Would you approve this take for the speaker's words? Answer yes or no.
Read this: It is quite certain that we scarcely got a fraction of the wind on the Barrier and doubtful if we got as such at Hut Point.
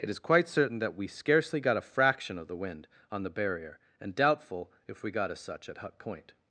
yes